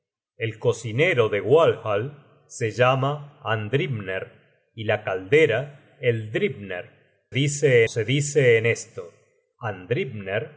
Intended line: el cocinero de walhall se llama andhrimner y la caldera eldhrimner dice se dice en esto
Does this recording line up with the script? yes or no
yes